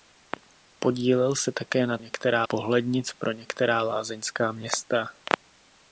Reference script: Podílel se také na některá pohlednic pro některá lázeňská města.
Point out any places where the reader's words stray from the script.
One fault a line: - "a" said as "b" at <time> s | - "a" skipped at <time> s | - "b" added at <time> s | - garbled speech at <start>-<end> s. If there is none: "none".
none